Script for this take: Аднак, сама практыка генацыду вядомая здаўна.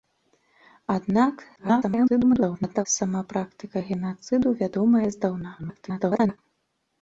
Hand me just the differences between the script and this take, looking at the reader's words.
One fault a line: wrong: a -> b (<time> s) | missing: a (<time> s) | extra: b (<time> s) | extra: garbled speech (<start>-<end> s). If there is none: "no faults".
extra: garbled speech (1.6-2.9 s)
extra: garbled speech (5.6-6.4 s)